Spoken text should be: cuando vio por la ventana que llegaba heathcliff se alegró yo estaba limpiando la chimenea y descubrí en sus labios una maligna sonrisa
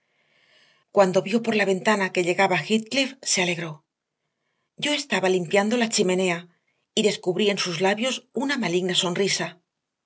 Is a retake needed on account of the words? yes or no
no